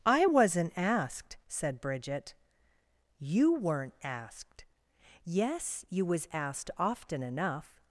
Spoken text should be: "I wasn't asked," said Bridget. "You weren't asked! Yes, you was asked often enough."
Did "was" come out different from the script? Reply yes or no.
no